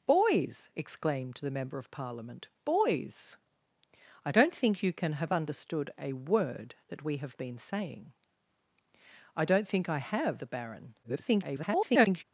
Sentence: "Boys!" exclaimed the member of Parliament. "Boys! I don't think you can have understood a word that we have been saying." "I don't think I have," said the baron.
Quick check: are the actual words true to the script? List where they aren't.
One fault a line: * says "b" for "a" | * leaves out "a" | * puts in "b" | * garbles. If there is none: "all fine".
* leaves out "said"
* garbles